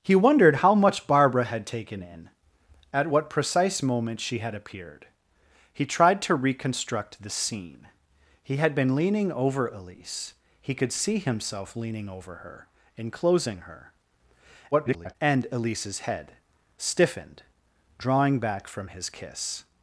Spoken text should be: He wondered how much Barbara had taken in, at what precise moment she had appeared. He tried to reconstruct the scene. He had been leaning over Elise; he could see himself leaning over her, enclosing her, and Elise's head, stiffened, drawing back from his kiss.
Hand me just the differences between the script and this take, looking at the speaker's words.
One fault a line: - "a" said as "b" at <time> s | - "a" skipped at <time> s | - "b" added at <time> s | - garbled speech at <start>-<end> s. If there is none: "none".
- garbled speech at 14.7-15.2 s